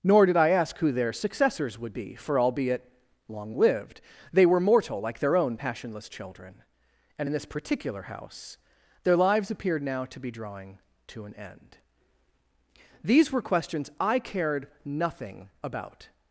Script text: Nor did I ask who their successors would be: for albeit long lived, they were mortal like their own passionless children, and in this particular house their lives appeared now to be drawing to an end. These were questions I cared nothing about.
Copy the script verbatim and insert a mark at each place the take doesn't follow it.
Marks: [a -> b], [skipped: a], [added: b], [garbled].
Nor did I ask who their successors would be: for albeit long lived, they were mortal like their own passionless children, and in this particular house their lives appeared now to be drawing to an end. These were questions I cared nothing about.